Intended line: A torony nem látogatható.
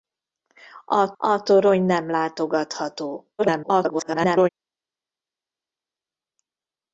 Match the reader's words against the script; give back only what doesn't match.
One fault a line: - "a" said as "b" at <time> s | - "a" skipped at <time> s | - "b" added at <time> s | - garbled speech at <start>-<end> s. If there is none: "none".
- "a" added at 1.2 s
- garbled speech at 3.4-4.5 s